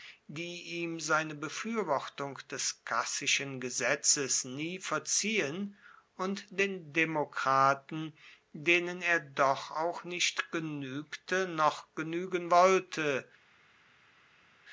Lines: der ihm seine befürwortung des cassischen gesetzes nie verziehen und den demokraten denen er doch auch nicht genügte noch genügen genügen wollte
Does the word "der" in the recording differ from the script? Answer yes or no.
yes